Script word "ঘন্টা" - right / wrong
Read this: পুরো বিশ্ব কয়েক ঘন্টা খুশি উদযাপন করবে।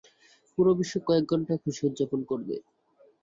right